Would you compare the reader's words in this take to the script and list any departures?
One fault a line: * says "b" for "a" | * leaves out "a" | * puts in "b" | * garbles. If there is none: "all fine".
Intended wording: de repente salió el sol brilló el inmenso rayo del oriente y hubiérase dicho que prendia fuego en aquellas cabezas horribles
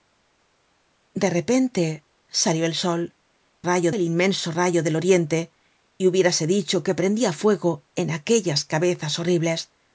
* says "rayo" for "brilló"